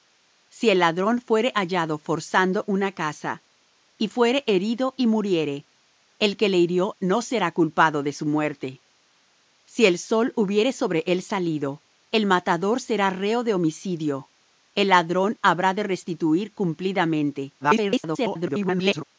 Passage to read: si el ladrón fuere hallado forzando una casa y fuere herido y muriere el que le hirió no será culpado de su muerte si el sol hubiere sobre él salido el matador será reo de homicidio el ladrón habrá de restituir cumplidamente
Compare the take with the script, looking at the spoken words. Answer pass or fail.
fail